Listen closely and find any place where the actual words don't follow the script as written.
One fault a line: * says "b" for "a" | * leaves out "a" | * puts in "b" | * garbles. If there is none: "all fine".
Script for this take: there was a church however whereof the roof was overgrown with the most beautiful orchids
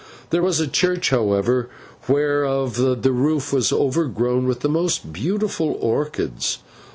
all fine